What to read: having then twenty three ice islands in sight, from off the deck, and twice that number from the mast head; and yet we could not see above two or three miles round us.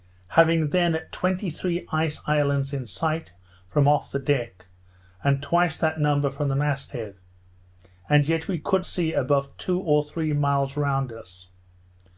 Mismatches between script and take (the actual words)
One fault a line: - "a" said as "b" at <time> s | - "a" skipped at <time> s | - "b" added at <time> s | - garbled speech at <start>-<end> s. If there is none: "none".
- "not" skipped at 8.9 s